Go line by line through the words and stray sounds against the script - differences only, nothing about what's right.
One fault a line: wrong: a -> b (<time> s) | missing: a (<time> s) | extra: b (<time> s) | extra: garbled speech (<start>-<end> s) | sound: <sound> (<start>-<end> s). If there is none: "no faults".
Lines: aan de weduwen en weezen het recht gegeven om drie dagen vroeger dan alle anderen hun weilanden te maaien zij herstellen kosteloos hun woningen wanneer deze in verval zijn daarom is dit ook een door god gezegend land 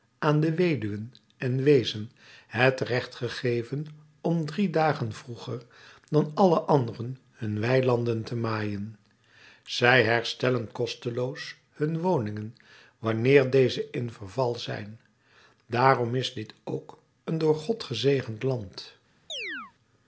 sound: chirp (19.3-19.7 s)